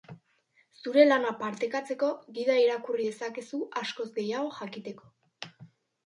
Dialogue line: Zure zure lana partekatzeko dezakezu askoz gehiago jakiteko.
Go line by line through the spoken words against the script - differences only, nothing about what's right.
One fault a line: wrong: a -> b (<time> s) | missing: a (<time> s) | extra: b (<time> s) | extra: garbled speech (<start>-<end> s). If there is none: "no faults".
missing: zure (1.0 s)
extra: gida irakurri (2.4 s)